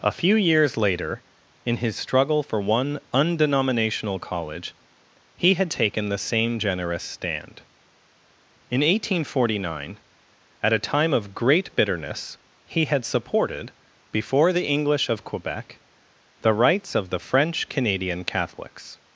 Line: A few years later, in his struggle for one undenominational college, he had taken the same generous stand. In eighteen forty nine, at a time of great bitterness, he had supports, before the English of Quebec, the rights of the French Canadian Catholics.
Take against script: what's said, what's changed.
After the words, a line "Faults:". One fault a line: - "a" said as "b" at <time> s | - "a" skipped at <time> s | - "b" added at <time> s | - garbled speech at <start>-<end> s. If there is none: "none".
A few years later, in his struggle for one undenominational college, he had taken the same generous stand. In eighteen forty nine, at a time of great bitterness, he had supported, before the English of Quebec, the rights of the French Canadian Catholics.
Faults:
- "supports" said as "supported" at 13.1 s